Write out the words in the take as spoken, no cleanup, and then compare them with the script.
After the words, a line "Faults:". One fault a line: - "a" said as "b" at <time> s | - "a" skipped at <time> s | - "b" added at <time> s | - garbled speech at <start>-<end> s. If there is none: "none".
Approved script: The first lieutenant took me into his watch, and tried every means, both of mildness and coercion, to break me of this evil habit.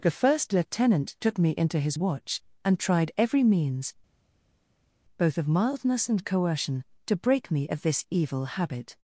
The first lieutenant took me into his watch, and tried every means, both of mildness and coercion, to break me of this evil habit.
Faults:
none